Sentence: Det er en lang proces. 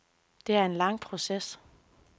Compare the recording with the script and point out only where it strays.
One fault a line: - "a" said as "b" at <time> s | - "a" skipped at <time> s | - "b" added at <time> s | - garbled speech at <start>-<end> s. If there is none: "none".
none